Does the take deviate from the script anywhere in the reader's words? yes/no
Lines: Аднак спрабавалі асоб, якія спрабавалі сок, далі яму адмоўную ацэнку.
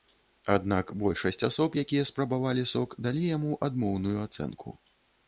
yes